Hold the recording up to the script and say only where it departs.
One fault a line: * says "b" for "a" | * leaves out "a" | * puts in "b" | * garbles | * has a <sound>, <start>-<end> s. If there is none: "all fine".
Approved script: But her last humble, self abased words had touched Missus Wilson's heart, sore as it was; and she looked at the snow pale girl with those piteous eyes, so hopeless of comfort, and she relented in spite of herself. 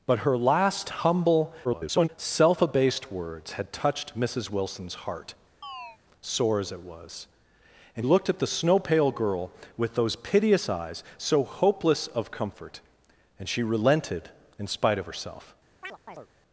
* garbles
* has a chirp, 5.6-6.0 s
* leaves out "she"
* has a chirp, 15.8-16.3 s